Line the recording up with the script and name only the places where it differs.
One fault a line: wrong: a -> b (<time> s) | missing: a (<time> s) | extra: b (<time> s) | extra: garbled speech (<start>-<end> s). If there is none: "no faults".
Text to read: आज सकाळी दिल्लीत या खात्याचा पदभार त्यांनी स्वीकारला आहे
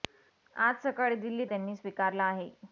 missing: या खात्याचा पदभार (1.5 s)